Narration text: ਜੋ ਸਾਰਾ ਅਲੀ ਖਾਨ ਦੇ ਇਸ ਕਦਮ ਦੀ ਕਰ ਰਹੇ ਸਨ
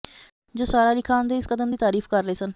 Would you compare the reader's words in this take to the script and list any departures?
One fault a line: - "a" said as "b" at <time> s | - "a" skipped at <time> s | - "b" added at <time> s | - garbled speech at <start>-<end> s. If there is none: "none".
- "ਤਾਰੀਫ" added at 1.8 s